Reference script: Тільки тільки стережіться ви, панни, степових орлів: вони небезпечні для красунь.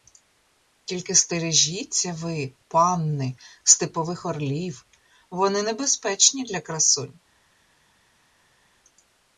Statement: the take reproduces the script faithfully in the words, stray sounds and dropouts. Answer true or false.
false